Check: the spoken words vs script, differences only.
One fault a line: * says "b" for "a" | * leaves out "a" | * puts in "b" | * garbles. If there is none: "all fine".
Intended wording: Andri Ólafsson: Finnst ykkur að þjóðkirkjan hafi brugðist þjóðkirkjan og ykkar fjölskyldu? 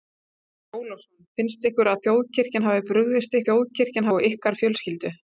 all fine